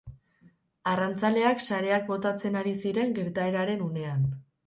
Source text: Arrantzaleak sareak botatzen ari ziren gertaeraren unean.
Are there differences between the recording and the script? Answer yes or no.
no